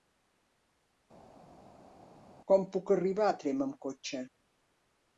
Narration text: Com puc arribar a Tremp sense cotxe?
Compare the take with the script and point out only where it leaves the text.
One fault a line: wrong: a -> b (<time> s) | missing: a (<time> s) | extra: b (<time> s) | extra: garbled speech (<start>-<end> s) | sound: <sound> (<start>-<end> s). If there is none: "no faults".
wrong: sense -> amb (3.7 s)